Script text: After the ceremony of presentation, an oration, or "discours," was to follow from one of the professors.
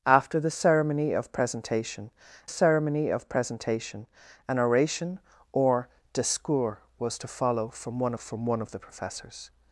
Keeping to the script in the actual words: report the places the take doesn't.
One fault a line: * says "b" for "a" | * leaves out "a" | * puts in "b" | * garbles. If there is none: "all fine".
* puts in "ceremony of presentation"
* puts in "from one"